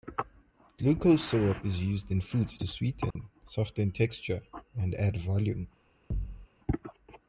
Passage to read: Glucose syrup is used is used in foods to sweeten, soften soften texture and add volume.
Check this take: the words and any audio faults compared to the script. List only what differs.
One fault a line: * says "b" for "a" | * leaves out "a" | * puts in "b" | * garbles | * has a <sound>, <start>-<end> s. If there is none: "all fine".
* leaves out "is used"
* has a dropout, 3.1-3.2 s
* leaves out "soften"
* has a thud, 6.1-6.5 s